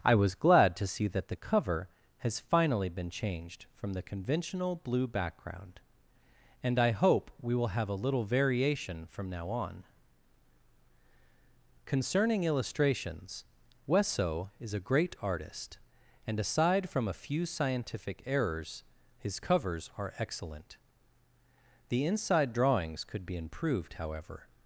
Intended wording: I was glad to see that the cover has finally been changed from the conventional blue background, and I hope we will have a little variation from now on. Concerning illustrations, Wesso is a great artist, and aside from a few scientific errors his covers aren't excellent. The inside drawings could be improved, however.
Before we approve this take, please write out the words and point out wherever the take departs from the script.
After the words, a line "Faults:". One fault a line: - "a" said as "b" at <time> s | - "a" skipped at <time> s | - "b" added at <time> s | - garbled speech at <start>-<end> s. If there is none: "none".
I was glad to see that the cover has finally been changed from the conventional blue background, and I hope we will have a little variation from now on. Concerning illustrations, Wesso is a great artist, and aside from a few scientific errors his covers are excellent. The inside drawings could be improved, however.
Faults:
- "aren't" said as "are" at 20.0 s